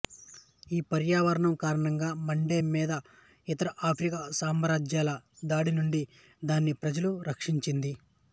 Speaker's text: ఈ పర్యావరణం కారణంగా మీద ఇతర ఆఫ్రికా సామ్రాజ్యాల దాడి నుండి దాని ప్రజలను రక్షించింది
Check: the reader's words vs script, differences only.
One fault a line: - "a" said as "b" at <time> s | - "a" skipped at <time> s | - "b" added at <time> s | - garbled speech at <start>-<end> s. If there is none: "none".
- "మండే" added at 2.3 s